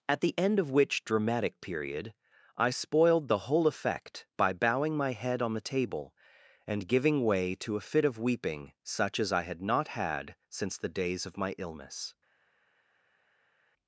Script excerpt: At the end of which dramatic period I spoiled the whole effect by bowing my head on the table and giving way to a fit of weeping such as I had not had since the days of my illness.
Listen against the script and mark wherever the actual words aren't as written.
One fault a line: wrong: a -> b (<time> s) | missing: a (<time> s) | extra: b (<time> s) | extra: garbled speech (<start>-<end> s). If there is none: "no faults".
no faults